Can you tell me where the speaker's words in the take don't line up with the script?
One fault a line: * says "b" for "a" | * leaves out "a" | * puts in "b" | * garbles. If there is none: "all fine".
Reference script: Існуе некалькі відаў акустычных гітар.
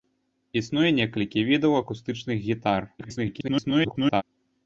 * garbles